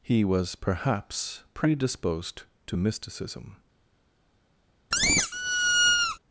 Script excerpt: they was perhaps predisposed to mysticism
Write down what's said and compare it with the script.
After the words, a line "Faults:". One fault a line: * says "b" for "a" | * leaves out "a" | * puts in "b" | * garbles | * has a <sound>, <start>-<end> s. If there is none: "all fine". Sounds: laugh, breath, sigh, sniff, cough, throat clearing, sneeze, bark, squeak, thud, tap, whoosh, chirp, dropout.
he was perhaps predisposed to mysticism
Faults:
* says "he" for "they"
* has a squeak, 4.9-6.2 s